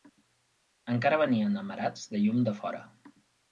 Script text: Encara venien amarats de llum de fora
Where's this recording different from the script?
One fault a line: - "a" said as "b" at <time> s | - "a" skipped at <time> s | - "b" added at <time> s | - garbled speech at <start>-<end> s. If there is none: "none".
none